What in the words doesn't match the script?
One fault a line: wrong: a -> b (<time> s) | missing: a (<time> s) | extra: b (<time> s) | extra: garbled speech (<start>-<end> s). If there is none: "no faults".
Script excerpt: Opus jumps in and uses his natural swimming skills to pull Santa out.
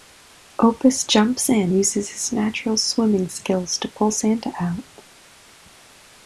missing: and (1.7 s)